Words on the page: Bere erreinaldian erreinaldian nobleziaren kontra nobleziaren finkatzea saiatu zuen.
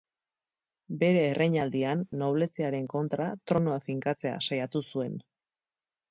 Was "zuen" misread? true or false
false